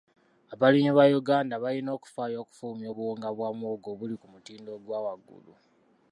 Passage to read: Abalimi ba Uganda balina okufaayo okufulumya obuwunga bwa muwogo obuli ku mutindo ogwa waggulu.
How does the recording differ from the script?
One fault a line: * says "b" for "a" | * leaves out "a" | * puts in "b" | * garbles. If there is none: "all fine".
all fine